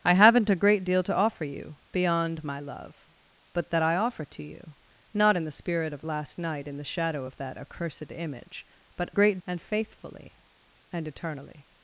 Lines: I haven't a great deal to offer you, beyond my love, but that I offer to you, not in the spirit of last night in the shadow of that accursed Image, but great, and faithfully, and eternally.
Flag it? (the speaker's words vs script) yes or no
no